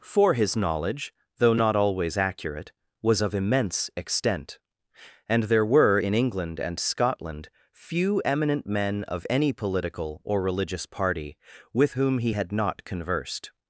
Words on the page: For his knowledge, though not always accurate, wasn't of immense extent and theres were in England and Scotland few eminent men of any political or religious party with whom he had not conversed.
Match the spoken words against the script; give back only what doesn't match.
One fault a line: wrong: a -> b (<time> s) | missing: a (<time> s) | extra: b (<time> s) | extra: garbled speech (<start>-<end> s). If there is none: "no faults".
wrong: wasn't -> was (3.0 s)
wrong: theres -> there (5.4 s)